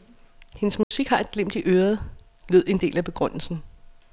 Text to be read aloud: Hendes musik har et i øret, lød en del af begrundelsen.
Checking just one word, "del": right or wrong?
right